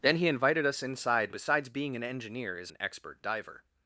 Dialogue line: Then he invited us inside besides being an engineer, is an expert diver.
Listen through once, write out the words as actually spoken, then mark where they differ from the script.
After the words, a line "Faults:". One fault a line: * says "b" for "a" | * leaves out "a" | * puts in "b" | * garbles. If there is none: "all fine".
Then he invited us inside besides being an engineer, is an expert diver.
Faults:
all fine